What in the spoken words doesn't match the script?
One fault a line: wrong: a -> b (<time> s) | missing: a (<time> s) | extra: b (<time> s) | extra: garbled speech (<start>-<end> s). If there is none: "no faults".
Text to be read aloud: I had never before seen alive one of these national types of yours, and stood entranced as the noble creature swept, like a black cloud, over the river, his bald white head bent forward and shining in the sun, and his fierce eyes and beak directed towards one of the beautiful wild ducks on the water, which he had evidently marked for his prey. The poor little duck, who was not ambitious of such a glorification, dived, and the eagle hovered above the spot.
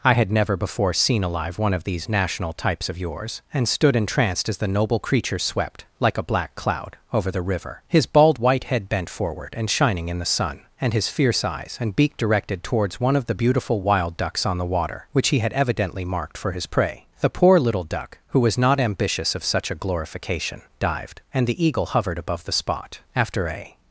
extra: After a (23.1 s)